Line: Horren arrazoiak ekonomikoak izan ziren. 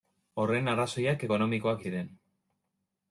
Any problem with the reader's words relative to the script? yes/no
yes